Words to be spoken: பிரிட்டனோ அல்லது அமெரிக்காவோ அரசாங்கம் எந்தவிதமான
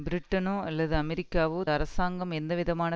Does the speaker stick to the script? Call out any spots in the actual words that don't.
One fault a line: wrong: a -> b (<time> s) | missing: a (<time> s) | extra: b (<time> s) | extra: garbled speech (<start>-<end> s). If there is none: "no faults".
no faults